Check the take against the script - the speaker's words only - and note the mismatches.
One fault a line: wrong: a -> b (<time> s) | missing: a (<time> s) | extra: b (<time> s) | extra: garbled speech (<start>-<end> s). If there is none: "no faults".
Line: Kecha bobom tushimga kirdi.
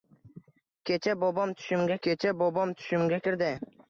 extra: kecha bobom tushimga (2.1 s)